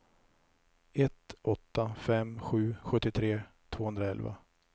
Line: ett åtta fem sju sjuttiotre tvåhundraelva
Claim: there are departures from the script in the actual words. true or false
false